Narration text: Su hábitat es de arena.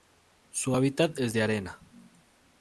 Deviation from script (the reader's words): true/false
false